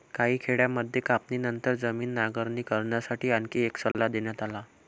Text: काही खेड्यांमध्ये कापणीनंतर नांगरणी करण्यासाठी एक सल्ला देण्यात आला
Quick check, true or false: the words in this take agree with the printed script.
false